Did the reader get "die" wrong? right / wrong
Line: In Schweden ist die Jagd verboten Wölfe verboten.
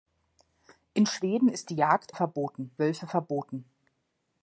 right